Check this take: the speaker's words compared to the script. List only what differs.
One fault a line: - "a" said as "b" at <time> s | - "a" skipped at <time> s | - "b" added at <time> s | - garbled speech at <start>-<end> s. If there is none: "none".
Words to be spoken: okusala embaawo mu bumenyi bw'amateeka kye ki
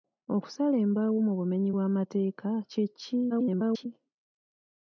- garbled speech at 3.3-3.9 s